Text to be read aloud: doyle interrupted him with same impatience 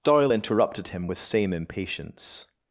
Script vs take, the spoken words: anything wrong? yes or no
no